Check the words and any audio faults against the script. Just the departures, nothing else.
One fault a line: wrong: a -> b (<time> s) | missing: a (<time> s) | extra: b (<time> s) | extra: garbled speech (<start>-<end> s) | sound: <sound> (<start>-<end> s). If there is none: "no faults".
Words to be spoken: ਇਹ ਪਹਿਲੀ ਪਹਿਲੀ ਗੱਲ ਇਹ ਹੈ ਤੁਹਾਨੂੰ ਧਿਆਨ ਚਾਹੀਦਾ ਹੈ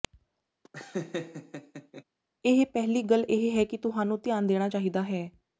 sound: laugh (0.6-2.0 s)
missing: ਪਹਿਲੀ (3.0 s)
extra: ਕਿ (3.6 s)
extra: ਦੇਣਾ (4.5 s)